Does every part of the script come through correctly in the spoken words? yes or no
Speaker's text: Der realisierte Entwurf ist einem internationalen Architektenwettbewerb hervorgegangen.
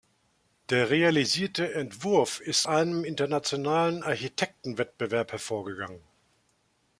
yes